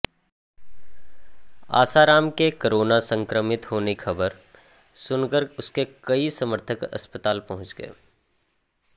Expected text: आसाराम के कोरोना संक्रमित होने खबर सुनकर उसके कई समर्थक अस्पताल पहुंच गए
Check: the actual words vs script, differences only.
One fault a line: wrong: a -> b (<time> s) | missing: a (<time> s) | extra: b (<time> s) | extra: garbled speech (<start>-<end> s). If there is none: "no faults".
no faults